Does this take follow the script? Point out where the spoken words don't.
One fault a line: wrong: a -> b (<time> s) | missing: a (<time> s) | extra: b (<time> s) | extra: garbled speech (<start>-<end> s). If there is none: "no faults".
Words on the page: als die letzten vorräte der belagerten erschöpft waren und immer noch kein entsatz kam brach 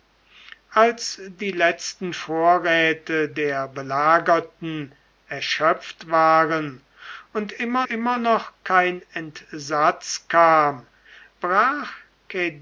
extra: immer (7.8 s)